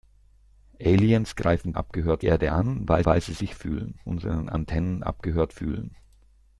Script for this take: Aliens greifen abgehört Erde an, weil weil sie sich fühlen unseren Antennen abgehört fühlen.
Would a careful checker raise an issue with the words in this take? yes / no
no